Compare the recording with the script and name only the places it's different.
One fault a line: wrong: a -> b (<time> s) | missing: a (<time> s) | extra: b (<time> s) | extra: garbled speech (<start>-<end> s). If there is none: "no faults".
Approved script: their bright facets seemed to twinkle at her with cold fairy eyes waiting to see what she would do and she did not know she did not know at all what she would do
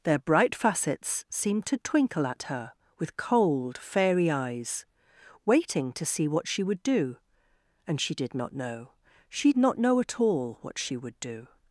missing: did (9.5 s)